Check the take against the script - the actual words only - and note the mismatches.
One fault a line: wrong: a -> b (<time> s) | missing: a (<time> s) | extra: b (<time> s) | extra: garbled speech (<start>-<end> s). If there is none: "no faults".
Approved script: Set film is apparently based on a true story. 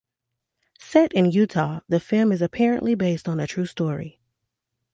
extra: in Utah the (1.1 s)